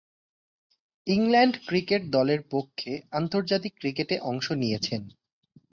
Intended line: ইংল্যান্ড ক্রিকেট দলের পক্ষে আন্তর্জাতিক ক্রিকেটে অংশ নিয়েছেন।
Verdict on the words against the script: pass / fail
pass